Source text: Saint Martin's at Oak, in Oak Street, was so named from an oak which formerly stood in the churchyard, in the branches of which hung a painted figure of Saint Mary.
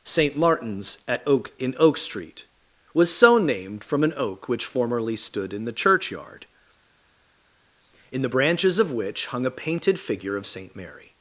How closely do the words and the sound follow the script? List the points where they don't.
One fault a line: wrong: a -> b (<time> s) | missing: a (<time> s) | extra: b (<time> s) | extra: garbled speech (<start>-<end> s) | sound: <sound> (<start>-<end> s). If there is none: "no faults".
no faults